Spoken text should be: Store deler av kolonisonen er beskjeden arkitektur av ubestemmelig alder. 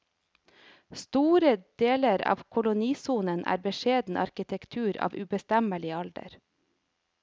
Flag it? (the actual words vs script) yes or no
no